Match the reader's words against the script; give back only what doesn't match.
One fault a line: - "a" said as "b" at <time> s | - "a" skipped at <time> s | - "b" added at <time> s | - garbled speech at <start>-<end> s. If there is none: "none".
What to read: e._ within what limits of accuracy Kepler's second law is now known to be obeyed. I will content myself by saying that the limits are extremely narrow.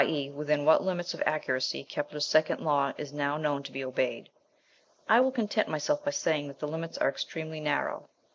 none